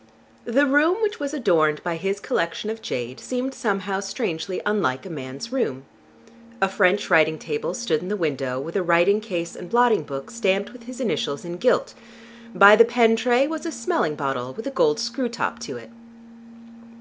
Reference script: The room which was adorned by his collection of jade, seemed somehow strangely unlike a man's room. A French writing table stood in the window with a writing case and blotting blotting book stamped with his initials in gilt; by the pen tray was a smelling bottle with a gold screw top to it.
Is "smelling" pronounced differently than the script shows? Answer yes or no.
no